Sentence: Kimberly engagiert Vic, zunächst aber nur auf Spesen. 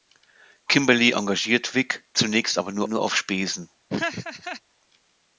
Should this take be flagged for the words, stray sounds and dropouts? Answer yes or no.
yes